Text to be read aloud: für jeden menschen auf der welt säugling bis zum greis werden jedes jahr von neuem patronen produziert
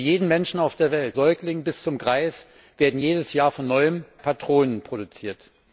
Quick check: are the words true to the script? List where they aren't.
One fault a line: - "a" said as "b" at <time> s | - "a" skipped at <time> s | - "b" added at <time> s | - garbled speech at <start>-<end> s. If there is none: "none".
none